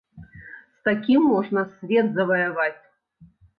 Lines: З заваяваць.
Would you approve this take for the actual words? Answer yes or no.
no